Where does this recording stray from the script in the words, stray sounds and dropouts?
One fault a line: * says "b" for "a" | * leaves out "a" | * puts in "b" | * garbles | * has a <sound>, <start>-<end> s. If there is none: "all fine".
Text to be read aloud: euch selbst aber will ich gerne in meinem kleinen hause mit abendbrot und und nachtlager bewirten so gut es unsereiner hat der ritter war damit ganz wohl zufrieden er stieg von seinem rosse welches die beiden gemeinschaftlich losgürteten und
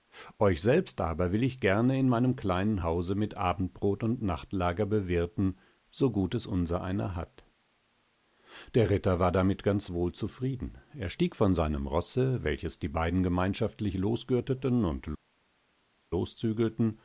* leaves out "und"